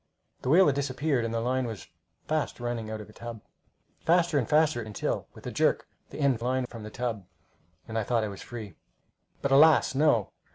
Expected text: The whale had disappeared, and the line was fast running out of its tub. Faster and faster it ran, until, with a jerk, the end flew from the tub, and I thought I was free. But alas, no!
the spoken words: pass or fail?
fail